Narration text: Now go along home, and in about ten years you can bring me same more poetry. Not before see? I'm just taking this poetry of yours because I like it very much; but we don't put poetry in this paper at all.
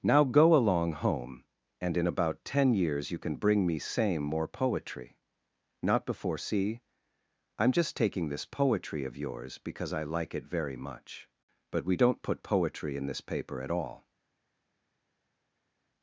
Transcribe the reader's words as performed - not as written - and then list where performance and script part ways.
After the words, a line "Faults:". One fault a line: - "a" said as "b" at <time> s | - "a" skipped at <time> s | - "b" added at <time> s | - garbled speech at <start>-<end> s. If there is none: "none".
Now go along home, and in about ten years you can bring me same more poetry. Not before see? I'm just taking this poetry of yours because I like it very much; but we don't put poetry in this paper at all.
Faults:
none